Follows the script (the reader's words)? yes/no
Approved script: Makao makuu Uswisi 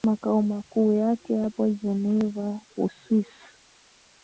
no